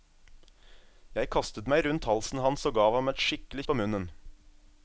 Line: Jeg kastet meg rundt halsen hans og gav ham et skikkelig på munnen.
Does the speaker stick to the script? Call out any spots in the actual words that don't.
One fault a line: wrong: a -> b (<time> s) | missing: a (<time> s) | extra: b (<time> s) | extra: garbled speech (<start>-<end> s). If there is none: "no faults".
no faults